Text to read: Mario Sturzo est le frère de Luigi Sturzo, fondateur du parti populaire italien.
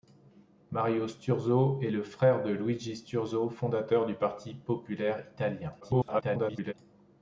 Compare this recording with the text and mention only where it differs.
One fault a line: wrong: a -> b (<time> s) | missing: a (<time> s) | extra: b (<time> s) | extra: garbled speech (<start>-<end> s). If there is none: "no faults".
extra: garbled speech (5.8-6.7 s)